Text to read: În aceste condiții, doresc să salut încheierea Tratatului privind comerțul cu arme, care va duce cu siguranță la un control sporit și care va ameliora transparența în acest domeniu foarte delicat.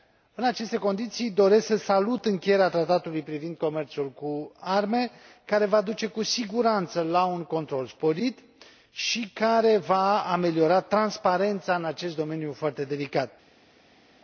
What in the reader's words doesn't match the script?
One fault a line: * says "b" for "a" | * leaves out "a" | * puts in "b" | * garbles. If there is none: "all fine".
all fine